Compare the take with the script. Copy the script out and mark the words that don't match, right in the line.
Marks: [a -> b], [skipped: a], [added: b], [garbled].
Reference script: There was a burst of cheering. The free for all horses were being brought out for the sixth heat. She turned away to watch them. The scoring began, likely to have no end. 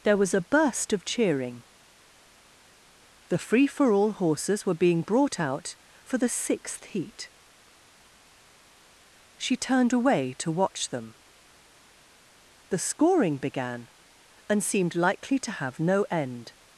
There was a burst of cheering. The free for all horses were being brought out for the sixth heat. She turned away to watch them. The scoring began, [added: and seemed] likely to have no end.